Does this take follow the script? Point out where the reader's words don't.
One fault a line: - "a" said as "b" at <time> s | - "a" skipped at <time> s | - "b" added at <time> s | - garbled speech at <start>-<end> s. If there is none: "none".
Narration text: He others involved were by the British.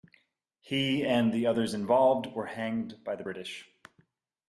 - "and the" added at 1.1 s
- "hanged" added at 2.5 s